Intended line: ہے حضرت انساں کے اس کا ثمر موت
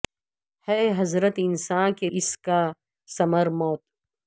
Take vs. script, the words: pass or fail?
pass